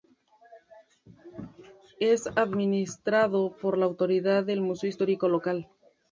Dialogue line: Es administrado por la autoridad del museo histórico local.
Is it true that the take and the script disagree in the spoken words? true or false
false